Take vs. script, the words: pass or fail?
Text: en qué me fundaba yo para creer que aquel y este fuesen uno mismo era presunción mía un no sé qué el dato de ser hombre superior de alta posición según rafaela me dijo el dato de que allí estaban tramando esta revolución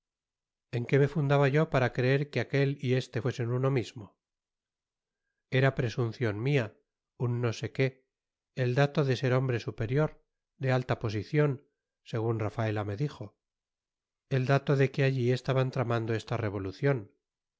pass